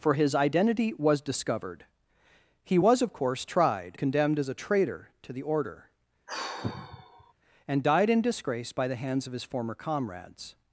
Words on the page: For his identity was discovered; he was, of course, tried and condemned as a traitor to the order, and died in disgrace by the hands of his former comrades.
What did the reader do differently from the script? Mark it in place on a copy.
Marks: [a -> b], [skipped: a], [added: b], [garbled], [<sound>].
For his identity was discovered; he was, of course, tried [skipped: and] condemned as a traitor to the order, [sigh] and died in disgrace by the hands of his former comrades.